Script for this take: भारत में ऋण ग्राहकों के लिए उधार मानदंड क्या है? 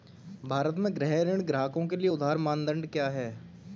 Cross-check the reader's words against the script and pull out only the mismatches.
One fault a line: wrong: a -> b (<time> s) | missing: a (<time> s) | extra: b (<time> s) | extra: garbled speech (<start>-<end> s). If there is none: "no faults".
extra: गृह (0.9 s)